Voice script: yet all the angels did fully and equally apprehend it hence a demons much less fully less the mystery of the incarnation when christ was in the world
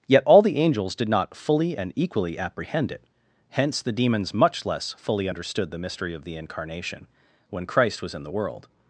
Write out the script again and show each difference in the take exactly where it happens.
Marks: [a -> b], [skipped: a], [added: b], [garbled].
yet all the angels did [added: not] fully and equally apprehend it hence [a -> the] demons much less fully [less -> understood] the mystery of the incarnation when christ was in the world